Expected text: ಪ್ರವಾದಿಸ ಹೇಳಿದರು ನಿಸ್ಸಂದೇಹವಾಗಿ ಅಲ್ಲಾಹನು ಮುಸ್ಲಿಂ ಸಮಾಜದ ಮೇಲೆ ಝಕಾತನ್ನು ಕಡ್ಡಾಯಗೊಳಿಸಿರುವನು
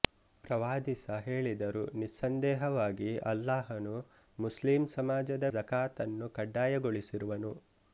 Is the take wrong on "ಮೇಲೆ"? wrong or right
wrong